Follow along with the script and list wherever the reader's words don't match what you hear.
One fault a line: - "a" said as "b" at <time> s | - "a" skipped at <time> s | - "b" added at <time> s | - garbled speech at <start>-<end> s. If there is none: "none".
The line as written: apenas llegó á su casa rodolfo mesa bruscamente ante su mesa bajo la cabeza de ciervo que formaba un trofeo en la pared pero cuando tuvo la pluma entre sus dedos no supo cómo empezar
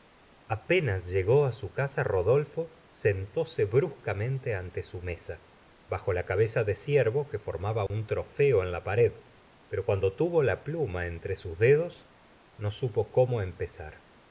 - "mesa" said as "sentóse" at 2.9 s